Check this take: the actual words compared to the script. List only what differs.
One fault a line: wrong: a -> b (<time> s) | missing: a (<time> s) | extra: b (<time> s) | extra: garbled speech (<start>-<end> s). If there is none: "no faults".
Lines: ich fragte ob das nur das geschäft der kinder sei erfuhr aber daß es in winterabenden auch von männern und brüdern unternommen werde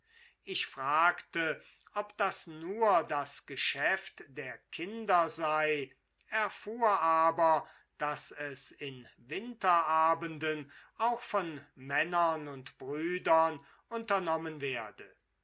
no faults